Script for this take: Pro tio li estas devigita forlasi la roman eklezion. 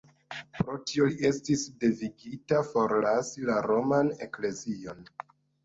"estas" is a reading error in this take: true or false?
true